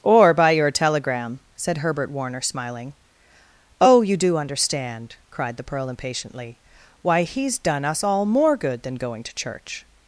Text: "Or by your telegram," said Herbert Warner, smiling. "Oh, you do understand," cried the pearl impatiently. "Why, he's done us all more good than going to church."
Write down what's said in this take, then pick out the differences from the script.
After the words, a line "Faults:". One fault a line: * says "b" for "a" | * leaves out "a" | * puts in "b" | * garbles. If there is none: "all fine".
"Or by your telegram," said Herbert Warner, smiling. "Oh, you do understand," cried the pearl impatiently. "Why, he's done us all more good than going to church."
Faults:
all fine